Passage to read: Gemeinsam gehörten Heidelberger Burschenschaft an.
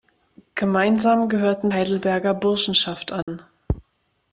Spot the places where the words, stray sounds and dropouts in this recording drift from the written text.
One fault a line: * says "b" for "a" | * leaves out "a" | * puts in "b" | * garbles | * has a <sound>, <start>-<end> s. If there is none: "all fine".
* has a dropout, 3.2-3.3 s